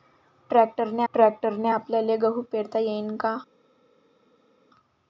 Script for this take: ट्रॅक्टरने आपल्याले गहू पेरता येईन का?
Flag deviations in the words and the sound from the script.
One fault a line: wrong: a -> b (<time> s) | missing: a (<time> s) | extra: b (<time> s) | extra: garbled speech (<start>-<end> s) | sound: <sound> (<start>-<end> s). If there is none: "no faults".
extra: ट्रॅक्टरने (1.1 s)